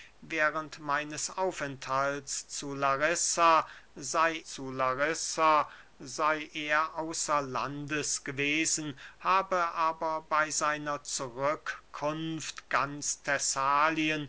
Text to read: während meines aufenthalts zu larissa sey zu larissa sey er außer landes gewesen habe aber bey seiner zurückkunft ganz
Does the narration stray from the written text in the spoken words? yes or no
no